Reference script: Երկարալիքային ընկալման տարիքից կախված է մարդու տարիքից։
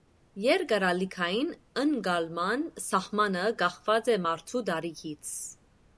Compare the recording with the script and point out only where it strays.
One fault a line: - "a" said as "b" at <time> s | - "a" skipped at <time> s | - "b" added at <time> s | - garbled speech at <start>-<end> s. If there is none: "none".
- "տարիքից" said as "սահմանը" at 2.9 s